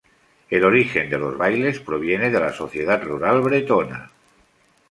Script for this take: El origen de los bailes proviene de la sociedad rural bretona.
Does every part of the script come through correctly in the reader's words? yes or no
yes